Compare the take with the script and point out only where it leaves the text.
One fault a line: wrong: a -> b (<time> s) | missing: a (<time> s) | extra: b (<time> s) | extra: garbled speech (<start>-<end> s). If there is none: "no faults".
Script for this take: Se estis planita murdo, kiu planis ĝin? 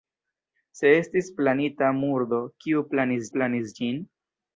extra: planis (3.4 s)